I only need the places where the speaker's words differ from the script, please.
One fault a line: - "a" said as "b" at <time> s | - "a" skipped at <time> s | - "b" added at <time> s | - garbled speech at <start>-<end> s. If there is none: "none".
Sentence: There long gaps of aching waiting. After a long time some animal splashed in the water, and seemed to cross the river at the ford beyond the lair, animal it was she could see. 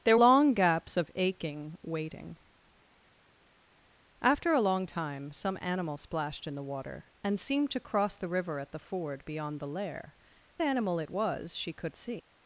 none